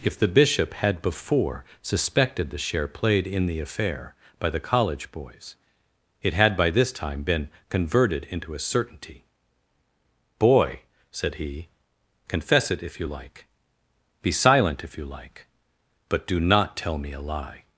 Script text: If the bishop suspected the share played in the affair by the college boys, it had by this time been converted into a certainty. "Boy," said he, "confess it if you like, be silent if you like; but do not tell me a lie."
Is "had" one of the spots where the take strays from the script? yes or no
no